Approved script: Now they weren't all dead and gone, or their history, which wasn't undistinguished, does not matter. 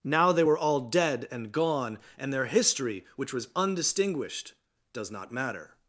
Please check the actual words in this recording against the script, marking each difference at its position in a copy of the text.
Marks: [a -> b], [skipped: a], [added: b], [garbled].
Now they [weren't -> were] all dead and gone, [or -> and] their history, which [wasn't -> was] undistinguished, does not matter.